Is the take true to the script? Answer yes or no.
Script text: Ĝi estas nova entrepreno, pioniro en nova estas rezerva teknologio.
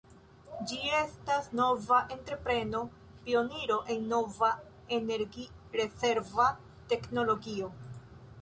no